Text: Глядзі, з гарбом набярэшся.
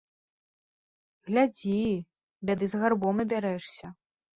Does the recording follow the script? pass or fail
fail